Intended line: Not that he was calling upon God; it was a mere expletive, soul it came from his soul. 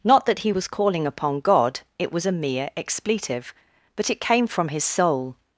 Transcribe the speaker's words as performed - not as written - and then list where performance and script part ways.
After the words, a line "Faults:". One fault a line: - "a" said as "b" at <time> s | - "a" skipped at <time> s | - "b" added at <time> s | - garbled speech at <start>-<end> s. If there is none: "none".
Not that he was calling upon God; it was a mere expletive, but it came from his soul.
Faults:
- "soul" said as "but" at 3.9 s